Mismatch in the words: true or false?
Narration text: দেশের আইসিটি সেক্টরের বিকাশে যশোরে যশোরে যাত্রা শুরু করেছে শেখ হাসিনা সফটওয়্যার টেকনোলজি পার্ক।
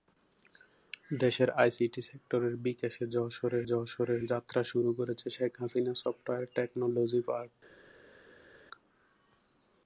false